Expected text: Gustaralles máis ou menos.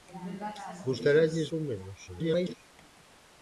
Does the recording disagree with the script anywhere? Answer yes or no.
yes